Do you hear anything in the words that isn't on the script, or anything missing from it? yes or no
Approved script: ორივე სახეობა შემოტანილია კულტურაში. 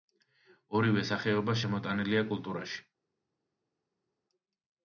no